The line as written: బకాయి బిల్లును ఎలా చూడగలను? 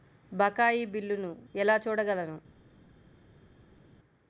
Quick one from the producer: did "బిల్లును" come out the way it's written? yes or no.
yes